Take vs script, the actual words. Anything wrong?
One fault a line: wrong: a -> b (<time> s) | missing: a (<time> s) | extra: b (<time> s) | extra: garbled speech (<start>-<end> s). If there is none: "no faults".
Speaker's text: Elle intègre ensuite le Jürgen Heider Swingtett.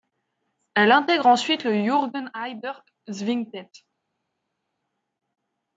no faults